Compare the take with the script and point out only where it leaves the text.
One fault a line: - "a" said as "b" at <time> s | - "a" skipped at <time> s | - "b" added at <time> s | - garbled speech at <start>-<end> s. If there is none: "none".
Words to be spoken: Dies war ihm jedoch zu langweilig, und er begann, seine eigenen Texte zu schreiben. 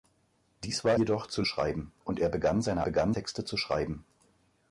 - "ihm" skipped at 1.0 s
- "langweilig" said as "schreiben" at 1.4 s
- "eigenen" said as "begann" at 2.8 s